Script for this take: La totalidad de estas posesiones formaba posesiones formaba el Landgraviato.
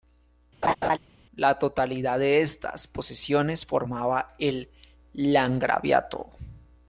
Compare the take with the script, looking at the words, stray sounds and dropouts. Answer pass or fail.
fail